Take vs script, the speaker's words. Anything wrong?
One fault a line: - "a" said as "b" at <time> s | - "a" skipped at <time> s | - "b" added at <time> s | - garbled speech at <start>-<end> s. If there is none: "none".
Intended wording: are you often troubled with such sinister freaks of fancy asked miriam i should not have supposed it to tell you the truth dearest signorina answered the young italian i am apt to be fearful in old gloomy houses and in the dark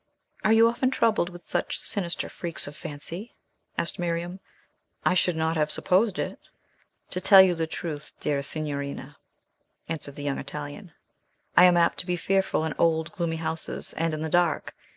none